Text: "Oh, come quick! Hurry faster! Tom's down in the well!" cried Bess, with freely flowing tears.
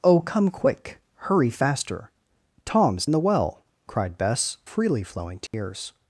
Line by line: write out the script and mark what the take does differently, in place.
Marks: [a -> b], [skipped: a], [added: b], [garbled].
"Oh, come quick! Hurry faster! Tom's [skipped: down] in the well!" cried Bess, [skipped: with] freely flowing tears.